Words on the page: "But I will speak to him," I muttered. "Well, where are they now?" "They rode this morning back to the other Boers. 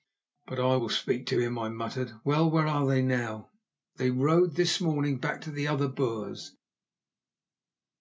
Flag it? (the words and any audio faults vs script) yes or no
no